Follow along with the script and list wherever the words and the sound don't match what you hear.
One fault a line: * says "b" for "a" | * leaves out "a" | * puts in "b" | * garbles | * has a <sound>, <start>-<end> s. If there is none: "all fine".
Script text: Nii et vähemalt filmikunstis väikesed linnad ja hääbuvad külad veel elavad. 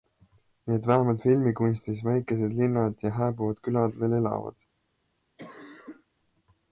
* has a cough, 5.4-6.1 s